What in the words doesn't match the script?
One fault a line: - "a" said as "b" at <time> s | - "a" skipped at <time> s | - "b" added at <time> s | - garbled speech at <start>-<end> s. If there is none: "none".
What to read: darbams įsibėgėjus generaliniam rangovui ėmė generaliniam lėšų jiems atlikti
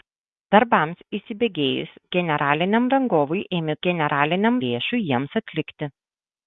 none